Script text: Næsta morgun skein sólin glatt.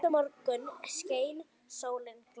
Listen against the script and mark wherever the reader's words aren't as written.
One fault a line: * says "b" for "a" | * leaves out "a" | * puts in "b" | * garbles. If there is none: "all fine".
all fine